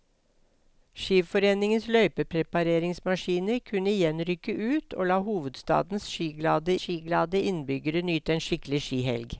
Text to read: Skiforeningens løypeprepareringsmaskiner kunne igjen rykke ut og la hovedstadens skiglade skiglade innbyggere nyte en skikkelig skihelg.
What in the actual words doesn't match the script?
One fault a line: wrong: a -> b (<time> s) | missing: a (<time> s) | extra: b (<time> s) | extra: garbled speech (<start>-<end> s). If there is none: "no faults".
no faults